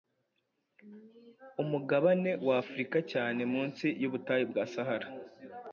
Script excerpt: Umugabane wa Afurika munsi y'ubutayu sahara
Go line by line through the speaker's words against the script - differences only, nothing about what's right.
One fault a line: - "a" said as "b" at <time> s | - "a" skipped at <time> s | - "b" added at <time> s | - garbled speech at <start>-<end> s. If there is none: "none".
- "cyane" added at 3.1 s
- "bwa" added at 4.5 s